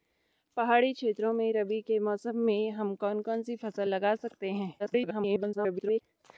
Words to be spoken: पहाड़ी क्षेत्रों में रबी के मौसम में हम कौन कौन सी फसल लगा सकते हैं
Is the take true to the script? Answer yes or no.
no